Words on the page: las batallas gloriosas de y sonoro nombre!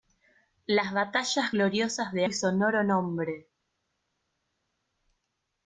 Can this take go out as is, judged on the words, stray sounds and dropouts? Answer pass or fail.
pass